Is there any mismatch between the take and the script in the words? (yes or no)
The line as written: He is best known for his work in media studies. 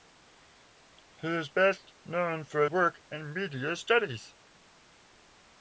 yes